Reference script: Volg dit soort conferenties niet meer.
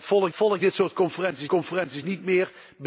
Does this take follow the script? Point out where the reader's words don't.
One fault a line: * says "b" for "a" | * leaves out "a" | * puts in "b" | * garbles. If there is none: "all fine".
* puts in "volg"
* puts in "conferenties"